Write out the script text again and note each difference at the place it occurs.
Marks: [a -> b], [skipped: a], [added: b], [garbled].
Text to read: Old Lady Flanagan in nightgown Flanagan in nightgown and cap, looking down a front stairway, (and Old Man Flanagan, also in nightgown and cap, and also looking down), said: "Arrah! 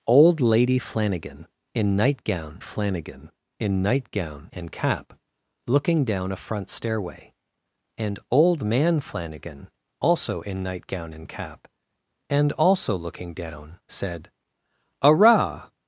Old Lady Flanagan in nightgown Flanagan in nightgown and cap, looking down a front stairway, (and Old Man Flanagan, also in nightgown and cap, and also looking down), said: "Arrah!